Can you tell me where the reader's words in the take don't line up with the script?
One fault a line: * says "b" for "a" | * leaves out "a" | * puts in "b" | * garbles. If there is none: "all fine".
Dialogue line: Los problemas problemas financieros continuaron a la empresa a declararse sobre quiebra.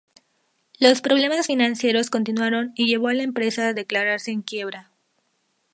* leaves out "problemas"
* puts in "y llevó"
* says "en" for "sobre"